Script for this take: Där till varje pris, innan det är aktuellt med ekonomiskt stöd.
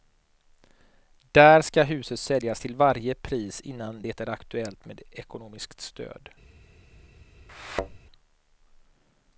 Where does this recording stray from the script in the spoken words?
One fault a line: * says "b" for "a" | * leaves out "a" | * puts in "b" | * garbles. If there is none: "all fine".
* puts in "ska huset säljas"